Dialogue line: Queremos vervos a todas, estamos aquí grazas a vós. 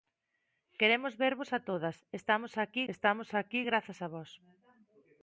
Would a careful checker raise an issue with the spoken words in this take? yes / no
yes